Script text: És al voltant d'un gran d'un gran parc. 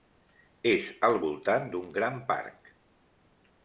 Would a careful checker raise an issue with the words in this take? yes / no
yes